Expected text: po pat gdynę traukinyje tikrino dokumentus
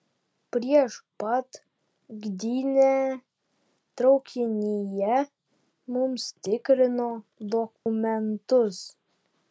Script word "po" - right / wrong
wrong